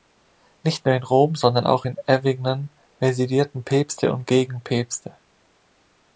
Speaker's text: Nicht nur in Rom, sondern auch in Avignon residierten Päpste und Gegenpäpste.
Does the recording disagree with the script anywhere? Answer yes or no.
no